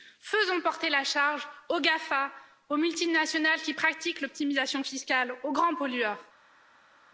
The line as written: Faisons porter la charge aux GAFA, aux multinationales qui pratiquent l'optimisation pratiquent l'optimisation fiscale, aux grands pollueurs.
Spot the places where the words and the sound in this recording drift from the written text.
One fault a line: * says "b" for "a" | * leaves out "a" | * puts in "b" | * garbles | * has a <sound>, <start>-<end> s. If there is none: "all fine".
* leaves out "pratiquent l'optimisation"